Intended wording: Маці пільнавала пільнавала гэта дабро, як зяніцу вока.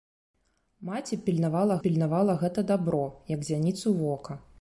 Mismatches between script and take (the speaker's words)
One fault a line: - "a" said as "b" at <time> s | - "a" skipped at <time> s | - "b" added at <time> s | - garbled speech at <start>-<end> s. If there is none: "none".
none